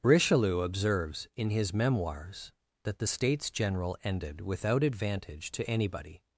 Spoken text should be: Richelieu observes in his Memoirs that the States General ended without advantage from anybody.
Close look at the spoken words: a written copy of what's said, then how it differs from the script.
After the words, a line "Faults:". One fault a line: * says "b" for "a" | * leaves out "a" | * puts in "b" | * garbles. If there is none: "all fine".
Richelieu observes in his Memoirs that the States General ended without advantage to anybody.
Faults:
* says "to" for "from"